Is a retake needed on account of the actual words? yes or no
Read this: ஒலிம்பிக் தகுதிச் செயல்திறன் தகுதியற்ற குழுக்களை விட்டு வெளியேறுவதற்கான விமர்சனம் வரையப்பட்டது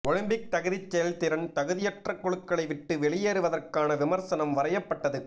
no